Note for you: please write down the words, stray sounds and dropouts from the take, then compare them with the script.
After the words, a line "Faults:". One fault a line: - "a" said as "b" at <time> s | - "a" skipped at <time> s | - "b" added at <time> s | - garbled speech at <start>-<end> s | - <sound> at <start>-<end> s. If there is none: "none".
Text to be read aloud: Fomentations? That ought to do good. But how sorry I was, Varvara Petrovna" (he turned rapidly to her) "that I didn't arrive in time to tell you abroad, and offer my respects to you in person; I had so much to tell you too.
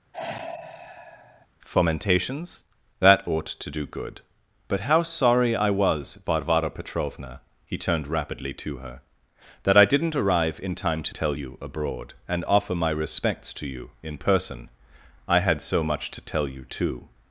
Fomentations? That ought to do good. But how sorry I was, Varvara Petrovna" (he turned rapidly to her) "that I didn't arrive in time to tell you abroad, and offer my respects to you in person; I had so much to tell you too.
Faults:
- sigh at 0.1-1.5 s